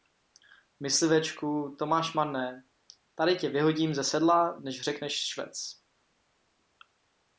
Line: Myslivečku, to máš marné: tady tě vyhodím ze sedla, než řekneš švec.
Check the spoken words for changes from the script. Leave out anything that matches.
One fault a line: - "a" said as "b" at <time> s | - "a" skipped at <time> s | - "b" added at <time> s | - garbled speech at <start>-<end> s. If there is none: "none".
none